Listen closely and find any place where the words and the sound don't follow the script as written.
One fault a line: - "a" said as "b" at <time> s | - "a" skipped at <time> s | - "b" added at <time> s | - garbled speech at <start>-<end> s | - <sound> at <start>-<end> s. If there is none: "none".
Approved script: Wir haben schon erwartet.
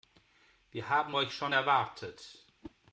- "euch" added at 1.1 s
- whoosh at 2.6-2.8 s